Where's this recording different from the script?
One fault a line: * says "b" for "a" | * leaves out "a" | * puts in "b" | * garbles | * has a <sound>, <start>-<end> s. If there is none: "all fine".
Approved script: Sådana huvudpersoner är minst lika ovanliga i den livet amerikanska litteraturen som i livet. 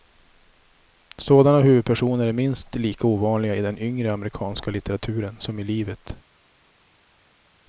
* says "yngre" for "livet"